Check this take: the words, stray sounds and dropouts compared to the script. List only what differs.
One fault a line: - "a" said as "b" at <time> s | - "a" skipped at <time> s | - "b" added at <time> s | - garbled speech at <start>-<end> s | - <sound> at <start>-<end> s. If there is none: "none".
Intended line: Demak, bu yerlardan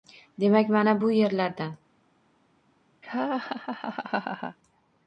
- "mana" added at 0.7 s
- laugh at 3.0-4.6 s